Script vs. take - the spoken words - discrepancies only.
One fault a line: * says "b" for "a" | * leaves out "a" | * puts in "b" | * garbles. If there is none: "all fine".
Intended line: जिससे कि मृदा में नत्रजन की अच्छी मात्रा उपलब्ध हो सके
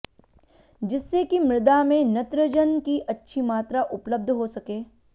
all fine